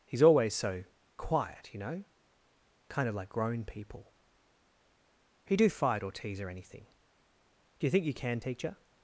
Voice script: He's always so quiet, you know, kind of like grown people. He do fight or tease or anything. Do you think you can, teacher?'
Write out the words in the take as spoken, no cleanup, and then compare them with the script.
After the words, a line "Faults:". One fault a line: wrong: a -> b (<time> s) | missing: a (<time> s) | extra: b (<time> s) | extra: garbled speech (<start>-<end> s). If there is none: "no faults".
He's always so quiet, you know, kind of like grown people. He do fight or tease or anything. Do you think you can, teacher?'
Faults:
no faults